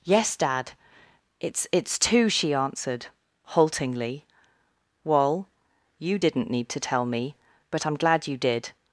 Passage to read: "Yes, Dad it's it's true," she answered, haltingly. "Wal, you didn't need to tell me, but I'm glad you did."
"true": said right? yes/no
no